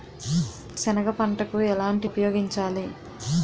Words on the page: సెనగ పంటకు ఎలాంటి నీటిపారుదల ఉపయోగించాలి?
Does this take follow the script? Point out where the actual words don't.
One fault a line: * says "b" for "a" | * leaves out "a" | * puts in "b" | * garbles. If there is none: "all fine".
* leaves out "నీటిపారుదల"